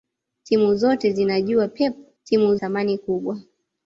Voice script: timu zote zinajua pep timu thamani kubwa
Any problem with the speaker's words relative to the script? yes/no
no